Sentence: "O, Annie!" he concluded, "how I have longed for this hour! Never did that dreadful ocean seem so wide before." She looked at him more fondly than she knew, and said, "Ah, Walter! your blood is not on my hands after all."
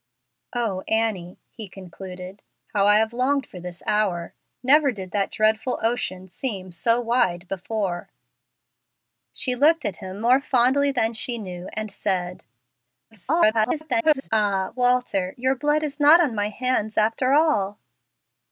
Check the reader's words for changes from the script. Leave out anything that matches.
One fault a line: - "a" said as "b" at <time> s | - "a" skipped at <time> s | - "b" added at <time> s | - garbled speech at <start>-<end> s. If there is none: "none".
- garbled speech at 13.1-14.3 s